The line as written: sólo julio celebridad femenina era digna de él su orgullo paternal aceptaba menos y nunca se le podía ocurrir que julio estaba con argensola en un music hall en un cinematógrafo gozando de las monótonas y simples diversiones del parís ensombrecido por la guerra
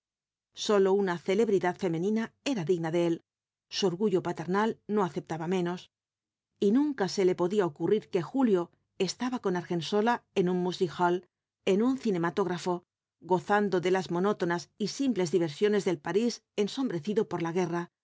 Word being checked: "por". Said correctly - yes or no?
yes